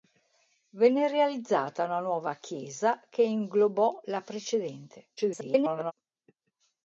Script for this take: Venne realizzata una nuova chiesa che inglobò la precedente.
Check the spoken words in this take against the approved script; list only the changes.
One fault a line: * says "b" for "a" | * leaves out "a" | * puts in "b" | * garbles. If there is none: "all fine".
* garbles